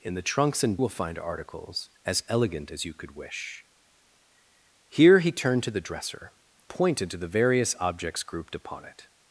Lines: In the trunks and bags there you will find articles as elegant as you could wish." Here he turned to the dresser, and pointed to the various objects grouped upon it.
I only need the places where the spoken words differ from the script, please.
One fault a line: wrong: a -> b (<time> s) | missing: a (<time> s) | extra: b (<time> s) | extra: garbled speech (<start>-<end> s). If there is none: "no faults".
missing: bags there you (0.8 s)
missing: and (6.3 s)